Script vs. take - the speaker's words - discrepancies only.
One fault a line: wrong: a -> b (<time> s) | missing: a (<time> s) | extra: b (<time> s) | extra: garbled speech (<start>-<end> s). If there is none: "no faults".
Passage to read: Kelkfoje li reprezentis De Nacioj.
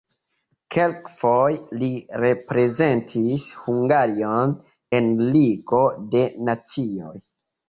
extra: Hungarion en Ligo (3.7 s)